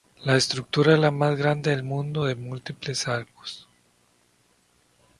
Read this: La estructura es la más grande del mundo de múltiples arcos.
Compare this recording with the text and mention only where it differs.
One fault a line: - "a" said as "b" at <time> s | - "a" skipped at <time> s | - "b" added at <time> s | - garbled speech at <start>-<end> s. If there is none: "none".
none